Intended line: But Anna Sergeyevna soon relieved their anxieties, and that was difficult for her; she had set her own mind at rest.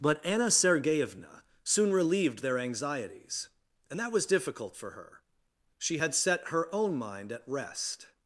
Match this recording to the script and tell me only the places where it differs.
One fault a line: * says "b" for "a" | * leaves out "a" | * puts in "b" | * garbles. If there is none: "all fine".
all fine